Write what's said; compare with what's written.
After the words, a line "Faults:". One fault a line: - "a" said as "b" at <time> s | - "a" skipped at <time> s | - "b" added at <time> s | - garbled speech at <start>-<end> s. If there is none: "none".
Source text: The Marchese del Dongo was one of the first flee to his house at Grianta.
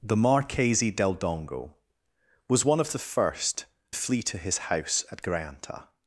The Marchese del Dongo was one of the first flee to his house at Grianta.
Faults:
none